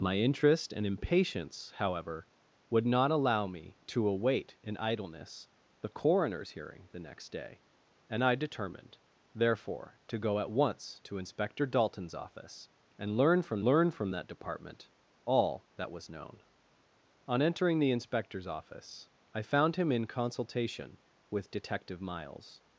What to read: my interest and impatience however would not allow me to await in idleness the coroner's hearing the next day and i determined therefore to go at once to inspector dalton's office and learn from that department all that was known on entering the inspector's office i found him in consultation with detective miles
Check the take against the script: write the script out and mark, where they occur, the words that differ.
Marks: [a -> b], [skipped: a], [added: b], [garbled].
my interest and impatience however would not allow me to await in idleness the coroner's hearing the next day and i determined therefore to go at once to inspector dalton's office and learn from [added: learn from] that department all that was known on entering the inspector's office i found him in consultation with detective miles